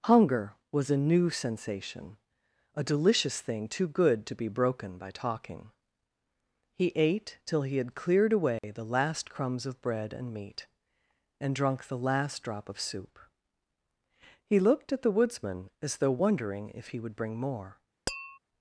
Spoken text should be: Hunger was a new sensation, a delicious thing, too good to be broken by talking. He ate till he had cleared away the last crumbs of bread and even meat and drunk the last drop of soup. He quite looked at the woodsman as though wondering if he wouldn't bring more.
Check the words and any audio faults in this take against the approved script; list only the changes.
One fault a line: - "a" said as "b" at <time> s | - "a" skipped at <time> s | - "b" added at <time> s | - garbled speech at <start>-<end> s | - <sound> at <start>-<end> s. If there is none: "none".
- dropout at 8.6-8.6 s
- "even" skipped at 10.3 s
- "quite" skipped at 14.6 s
- "wouldn't" said as "would" at 17.0 s
- tap at 18.1-18.4 s